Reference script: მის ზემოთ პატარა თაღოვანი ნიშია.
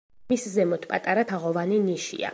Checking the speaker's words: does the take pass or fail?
pass